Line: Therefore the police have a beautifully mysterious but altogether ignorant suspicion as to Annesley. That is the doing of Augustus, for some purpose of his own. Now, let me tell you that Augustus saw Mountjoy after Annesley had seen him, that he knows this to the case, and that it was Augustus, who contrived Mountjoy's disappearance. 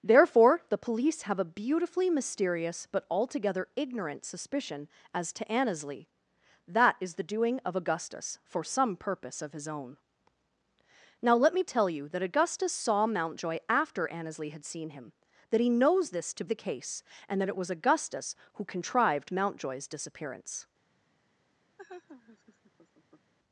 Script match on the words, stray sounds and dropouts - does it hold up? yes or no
no